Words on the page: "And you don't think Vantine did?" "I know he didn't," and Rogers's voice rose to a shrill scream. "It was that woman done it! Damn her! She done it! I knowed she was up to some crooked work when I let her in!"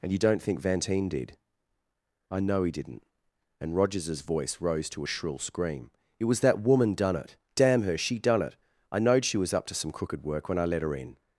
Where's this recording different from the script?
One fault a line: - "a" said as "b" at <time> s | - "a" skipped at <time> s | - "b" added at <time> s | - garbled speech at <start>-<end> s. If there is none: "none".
none